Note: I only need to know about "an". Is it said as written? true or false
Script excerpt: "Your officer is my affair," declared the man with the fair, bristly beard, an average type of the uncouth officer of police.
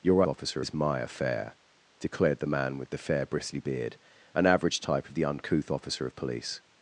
true